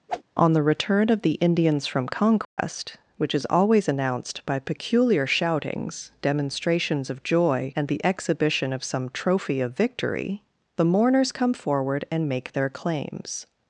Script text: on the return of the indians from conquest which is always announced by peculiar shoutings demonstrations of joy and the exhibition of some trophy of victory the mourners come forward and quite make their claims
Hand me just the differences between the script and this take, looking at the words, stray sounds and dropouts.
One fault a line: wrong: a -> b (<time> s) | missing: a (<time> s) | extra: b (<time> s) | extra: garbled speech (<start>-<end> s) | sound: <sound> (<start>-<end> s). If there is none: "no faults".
sound: whoosh (0.1-0.2 s)
sound: dropout (2.4-2.6 s)
missing: quite (12.3 s)